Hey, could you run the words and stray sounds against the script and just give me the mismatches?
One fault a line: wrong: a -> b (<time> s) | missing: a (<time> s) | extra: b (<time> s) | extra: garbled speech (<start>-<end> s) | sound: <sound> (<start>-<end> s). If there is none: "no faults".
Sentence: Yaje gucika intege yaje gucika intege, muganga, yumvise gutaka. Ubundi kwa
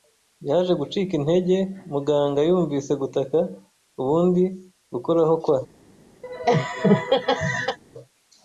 missing: yaje gucika intege (1.6 s)
extra: gukoraho (4.9 s)
sound: laugh (6.2-7.8 s)